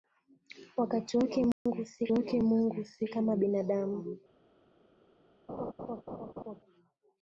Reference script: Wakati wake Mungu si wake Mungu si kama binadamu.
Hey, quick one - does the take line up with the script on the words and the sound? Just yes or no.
no